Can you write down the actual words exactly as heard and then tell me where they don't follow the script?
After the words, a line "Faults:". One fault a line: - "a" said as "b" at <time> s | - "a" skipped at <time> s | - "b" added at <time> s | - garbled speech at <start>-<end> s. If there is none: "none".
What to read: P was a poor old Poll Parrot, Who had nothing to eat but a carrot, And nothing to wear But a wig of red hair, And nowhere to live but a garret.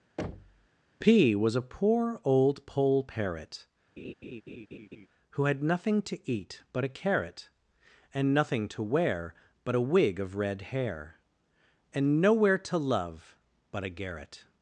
P was a poor old Poll Parrot, Who had nothing to eat but a carrot, And nothing to wear But a wig of red hair, And nowhere to love but a garret.
Faults:
- "live" said as "love" at 12.8 s